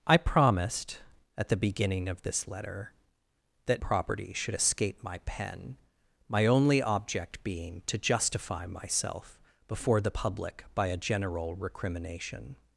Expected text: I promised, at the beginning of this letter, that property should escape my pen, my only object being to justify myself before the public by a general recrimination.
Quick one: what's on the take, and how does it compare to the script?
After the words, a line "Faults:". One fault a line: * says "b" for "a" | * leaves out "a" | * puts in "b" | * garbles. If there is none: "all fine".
I promised, at the beginning of this letter, that property should escape my pen, my only object being to justify myself before the public by a general recrimination.
Faults:
all fine